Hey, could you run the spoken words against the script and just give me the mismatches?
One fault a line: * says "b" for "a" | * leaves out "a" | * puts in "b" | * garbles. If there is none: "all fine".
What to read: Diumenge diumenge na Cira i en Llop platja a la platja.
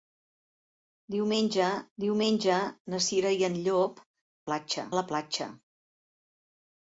all fine